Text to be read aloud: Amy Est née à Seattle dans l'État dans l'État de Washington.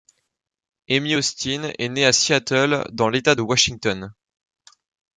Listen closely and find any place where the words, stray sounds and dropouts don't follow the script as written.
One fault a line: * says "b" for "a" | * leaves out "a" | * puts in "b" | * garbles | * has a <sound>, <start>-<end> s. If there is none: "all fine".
* puts in "Austin"
* leaves out "dans l'État"